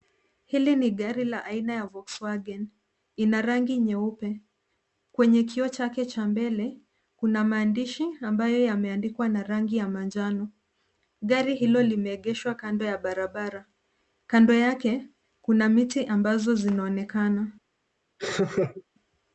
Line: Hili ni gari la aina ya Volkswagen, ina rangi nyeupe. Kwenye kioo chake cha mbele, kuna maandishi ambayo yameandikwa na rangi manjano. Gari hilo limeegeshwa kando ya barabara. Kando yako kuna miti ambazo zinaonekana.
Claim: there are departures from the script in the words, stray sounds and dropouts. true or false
true